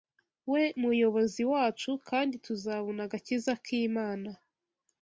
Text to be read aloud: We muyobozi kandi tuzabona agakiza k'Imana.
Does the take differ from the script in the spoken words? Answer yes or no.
yes